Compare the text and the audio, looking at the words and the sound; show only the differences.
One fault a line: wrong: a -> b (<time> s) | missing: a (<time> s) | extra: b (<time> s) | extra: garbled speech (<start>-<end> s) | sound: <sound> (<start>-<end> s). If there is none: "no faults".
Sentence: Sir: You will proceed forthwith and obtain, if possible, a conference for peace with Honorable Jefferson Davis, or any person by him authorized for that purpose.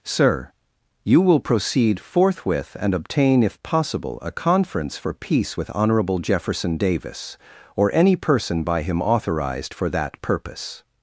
no faults